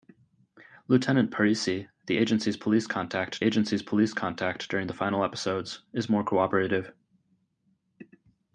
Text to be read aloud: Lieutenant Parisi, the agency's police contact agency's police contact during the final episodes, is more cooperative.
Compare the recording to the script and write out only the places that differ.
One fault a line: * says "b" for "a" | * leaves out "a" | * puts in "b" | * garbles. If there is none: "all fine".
all fine